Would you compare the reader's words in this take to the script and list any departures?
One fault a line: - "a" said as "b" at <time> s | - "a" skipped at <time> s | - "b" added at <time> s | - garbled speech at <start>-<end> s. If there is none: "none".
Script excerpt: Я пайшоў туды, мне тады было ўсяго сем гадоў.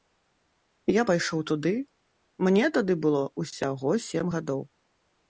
none